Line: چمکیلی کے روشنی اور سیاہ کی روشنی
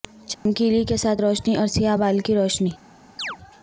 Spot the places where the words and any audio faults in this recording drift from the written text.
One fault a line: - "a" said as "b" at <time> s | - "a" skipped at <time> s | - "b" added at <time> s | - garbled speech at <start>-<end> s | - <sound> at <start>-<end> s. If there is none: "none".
- dropout at 0.3-0.5 s
- "ساتھ" added at 1.0 s
- "بال" added at 1.9 s
- chirp at 3.2-3.4 s